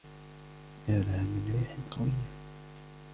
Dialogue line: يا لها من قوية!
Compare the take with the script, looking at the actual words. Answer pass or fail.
fail